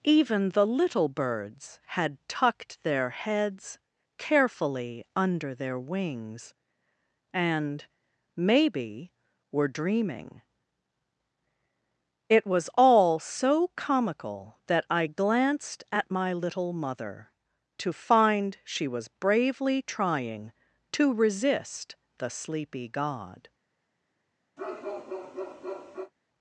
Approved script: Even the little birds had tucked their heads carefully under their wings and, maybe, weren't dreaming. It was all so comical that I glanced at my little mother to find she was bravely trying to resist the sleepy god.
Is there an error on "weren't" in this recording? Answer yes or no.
yes